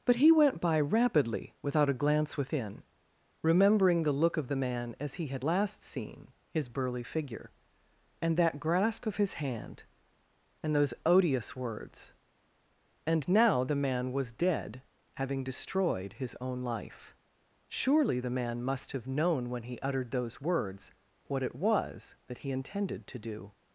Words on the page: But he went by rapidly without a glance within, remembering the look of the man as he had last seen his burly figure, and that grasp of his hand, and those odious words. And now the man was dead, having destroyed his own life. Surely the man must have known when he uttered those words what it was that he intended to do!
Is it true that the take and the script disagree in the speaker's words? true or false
false